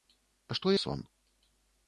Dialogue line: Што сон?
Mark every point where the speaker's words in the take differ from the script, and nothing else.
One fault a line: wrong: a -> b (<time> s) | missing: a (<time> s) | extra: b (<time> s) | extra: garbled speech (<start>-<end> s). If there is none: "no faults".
no faults